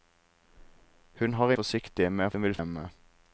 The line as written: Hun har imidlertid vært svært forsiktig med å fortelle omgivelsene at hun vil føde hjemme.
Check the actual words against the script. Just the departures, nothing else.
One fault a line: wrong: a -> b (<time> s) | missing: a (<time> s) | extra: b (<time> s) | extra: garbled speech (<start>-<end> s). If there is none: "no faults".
missing: imidlertid vært svært (1.5 s)
missing: fortelle omgivelsene at (2.3 s)
missing: føde (2.6 s)